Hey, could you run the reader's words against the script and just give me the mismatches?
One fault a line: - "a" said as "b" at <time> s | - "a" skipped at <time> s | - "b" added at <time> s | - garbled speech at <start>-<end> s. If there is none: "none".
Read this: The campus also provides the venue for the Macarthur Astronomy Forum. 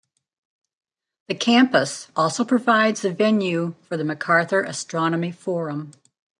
none